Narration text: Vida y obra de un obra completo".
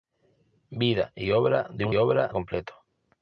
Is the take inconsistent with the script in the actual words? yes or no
no